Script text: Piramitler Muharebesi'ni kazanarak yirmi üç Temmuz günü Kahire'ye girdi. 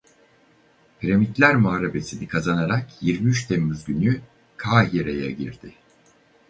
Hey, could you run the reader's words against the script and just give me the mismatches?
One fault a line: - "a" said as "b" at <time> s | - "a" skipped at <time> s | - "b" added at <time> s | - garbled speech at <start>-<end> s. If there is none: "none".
none